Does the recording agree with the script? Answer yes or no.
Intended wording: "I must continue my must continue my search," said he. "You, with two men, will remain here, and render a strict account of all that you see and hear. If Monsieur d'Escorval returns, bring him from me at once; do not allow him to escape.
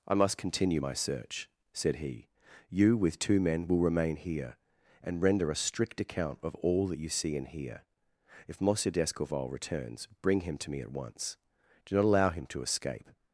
no